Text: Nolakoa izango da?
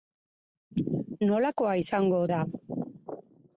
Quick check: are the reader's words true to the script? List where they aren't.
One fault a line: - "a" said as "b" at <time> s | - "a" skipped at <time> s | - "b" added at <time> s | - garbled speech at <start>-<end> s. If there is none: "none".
none